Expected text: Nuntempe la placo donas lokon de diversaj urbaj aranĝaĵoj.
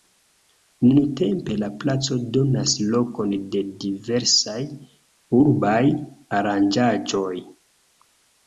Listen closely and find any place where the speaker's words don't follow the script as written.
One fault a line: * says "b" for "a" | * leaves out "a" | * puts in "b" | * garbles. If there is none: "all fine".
all fine